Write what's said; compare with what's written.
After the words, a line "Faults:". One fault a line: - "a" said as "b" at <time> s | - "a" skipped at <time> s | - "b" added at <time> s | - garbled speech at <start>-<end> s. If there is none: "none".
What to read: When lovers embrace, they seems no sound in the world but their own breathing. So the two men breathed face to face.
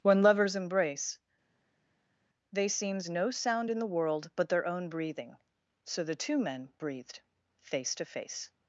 When lovers embrace, they seems no sound in the world but their own breathing. So the two men breathed face to face.
Faults:
none